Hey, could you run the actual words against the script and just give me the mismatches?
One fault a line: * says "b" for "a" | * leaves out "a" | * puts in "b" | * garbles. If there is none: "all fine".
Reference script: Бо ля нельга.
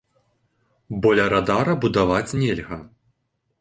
* puts in "радара будаваць"